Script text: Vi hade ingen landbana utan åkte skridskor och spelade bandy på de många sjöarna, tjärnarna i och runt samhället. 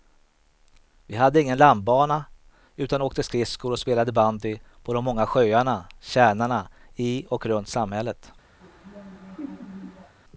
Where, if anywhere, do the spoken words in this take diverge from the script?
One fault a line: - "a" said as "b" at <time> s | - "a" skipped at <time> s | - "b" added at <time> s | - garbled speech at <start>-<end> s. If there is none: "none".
none